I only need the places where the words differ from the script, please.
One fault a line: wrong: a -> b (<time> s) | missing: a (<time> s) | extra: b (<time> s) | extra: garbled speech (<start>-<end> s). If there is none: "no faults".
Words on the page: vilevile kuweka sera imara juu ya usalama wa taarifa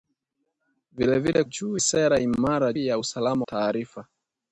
wrong: kuweka -> juu (1.4 s)
missing: juu (2.7 s)
missing: wa (3.5 s)